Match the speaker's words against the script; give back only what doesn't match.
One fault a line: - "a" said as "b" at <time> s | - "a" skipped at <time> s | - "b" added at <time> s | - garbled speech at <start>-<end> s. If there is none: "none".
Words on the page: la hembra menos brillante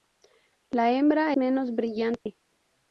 none